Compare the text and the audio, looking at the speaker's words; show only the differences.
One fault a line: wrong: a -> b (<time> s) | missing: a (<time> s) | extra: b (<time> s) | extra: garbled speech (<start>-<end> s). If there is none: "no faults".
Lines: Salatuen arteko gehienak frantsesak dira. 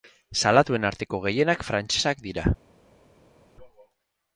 no faults